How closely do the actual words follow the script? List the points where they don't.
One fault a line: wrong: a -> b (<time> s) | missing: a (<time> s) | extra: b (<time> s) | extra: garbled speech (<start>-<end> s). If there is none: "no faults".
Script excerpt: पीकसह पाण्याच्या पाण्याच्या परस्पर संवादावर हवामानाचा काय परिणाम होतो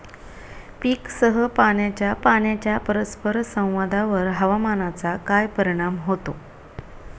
no faults